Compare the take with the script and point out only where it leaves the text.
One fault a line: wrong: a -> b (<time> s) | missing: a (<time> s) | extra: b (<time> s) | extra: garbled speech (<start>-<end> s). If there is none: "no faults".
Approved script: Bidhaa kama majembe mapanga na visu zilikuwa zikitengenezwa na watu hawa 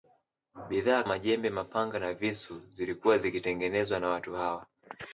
missing: kama (1.0 s)